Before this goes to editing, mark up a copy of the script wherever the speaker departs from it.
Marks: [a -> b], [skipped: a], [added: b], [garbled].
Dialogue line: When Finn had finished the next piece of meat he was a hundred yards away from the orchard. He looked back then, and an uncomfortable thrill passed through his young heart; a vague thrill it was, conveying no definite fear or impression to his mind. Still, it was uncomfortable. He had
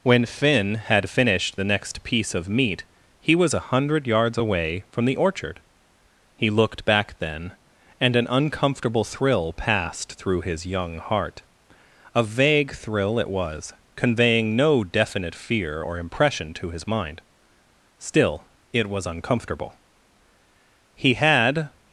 When Finn had finished the next piece of meat he was a hundred yards away from the orchard. He looked back then, and an uncomfortable thrill passed through his young heart; a vague thrill it was, conveying no definite fear or impression to his mind. Still, it was uncomfortable. He had